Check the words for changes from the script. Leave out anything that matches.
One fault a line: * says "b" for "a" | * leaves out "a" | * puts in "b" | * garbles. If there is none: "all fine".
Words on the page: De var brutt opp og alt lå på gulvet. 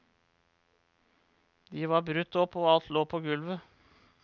all fine